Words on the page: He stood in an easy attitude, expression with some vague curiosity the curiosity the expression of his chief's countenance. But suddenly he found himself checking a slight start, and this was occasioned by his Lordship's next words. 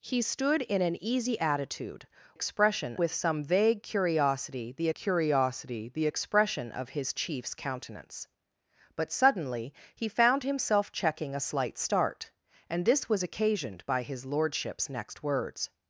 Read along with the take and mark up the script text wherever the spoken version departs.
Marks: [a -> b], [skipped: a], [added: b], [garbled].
He stood in an easy attitude, expression with some vague curiosity the curiosity the expression of his chief's countenance. But suddenly he found himself checking a slight start, and this was occasioned by his Lordship's next words.